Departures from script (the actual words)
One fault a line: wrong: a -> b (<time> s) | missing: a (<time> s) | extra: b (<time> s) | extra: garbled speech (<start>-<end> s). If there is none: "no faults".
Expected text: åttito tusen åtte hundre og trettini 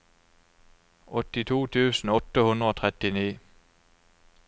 no faults